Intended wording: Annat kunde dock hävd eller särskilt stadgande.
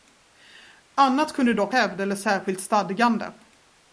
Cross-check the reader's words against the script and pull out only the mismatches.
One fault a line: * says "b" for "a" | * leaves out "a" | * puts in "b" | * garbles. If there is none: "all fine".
all fine